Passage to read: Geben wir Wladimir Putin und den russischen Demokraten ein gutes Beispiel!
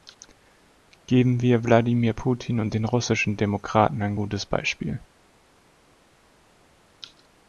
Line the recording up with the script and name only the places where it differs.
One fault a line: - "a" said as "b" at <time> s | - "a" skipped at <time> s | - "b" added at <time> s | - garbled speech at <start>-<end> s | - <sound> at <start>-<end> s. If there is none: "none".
none